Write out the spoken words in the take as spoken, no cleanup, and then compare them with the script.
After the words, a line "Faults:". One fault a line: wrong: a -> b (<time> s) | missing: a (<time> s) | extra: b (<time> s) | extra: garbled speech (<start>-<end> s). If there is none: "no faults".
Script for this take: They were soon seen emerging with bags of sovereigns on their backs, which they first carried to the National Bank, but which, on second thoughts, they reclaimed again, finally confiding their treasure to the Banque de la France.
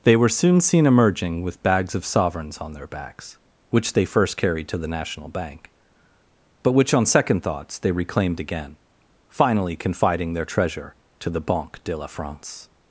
They were soon seen emerging with bags of sovereigns on their backs, which they first carried to the National Bank, but which, on second thoughts, they reclaimed again, finally confiding their treasure to the Banque de la France.
Faults:
no faults